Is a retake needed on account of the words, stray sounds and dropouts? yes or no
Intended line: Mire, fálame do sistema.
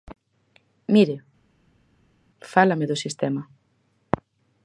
no